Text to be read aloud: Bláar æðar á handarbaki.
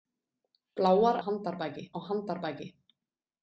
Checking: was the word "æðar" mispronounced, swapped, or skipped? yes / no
yes